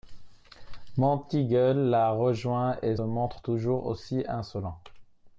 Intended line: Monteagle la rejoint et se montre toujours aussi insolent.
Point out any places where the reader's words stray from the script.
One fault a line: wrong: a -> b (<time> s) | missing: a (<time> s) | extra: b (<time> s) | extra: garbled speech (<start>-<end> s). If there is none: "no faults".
missing: se (3.0 s)